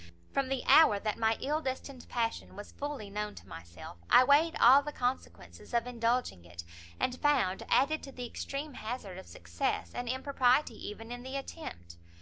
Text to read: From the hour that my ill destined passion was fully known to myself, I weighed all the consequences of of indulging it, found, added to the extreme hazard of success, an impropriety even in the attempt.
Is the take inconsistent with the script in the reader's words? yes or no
yes